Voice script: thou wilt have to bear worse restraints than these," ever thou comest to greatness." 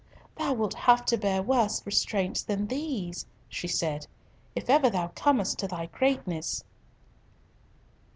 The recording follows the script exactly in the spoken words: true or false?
false